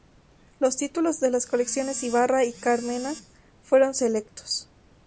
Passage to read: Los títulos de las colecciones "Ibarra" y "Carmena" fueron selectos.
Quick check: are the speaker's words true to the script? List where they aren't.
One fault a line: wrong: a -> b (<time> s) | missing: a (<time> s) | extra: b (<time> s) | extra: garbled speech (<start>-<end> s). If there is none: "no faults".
no faults